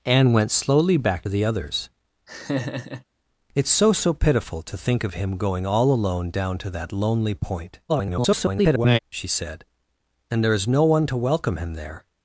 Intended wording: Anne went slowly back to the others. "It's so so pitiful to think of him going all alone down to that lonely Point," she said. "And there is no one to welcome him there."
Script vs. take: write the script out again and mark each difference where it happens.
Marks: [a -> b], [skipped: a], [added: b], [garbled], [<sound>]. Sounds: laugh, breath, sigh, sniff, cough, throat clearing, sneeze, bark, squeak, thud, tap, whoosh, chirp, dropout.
Anne went slowly back [skipped: to] the others. [laugh] "It's so so pitiful to think of him going all alone down to that lonely Point," [garbled] she said. "And there is no one to welcome him there."